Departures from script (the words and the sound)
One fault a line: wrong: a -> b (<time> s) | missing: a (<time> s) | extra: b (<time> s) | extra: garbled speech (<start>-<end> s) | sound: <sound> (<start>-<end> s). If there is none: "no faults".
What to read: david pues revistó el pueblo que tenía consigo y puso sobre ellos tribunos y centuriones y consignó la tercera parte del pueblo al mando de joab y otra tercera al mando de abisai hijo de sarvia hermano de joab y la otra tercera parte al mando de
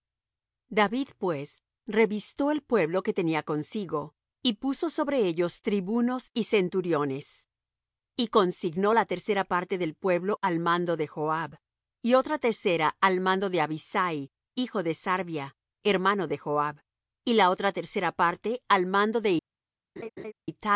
sound: laugh (20.0-20.3 s)